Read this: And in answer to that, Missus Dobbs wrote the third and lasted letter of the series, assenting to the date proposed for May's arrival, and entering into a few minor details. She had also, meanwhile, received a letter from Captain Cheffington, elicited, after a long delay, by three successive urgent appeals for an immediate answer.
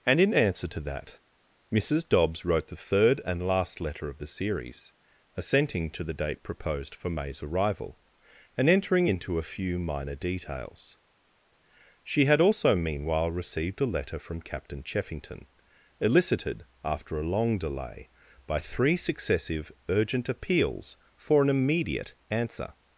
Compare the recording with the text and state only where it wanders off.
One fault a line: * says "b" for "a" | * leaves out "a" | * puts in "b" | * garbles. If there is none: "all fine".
* says "last" for "lasted"